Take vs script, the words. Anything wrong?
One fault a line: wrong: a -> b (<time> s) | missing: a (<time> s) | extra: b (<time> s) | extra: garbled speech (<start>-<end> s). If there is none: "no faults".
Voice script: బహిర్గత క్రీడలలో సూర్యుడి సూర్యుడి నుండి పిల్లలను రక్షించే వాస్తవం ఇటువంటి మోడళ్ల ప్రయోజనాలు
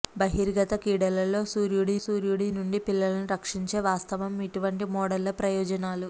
no faults